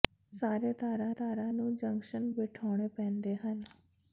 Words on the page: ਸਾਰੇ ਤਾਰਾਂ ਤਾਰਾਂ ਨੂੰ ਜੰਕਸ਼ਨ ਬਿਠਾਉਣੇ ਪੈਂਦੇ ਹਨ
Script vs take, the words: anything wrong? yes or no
no